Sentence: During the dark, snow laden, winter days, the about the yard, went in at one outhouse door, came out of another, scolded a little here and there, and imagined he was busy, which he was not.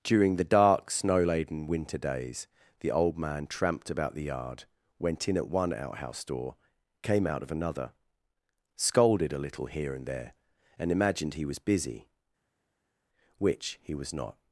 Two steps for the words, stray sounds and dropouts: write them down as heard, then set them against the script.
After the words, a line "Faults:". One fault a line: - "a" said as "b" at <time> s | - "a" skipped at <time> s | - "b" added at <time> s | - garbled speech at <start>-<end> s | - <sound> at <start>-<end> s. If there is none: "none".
During the dark, snow laden, winter days, the old man tramped about the yard, went in at one outhouse door, came out of another, scolded a little here and there, and imagined he was busy, which he was not.
Faults:
- "old man tramped" added at 2.9 s